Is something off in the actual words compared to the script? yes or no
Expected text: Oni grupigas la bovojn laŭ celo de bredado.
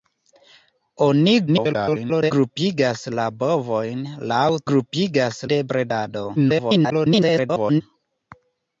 yes